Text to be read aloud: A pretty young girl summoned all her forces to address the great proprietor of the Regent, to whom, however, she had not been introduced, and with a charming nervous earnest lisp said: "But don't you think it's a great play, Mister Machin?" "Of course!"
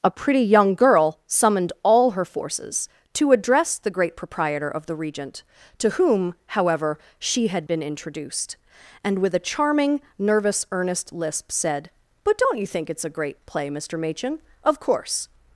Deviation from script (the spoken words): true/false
true